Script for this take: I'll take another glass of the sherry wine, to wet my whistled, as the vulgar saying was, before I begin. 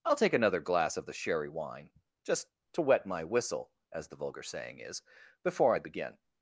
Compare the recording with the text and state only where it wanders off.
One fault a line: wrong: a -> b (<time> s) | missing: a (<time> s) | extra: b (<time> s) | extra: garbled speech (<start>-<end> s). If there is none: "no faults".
extra: just (2.2 s)
wrong: whistled -> whistle (3.2 s)
wrong: was -> is (4.8 s)